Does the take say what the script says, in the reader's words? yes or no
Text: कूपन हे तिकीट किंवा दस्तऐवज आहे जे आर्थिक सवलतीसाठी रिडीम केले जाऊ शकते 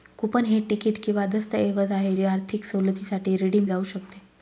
no